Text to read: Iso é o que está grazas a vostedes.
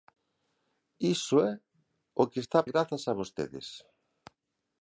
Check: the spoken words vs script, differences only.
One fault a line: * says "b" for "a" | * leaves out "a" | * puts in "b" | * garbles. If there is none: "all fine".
all fine